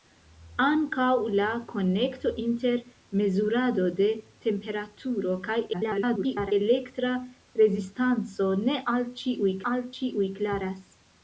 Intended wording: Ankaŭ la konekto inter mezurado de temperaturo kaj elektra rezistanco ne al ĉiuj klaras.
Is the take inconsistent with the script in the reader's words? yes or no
yes